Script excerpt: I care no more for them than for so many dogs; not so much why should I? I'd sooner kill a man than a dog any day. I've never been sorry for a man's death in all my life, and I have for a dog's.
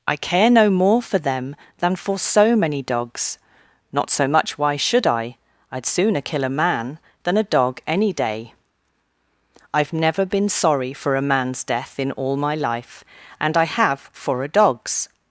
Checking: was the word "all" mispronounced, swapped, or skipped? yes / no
no